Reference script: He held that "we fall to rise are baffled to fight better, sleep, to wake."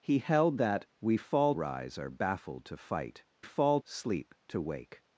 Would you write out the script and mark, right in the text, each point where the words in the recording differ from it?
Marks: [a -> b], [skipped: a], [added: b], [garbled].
He held that "we fall [skipped: to] rise are baffled to fight [better, -> fall] sleep, to wake."